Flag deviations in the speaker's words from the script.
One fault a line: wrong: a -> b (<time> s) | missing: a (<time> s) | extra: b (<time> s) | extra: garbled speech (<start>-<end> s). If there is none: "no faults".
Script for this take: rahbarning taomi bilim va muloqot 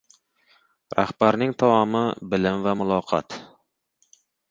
no faults